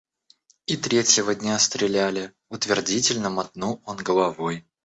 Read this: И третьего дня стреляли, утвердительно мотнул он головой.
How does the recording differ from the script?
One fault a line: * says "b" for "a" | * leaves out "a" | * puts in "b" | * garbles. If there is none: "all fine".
all fine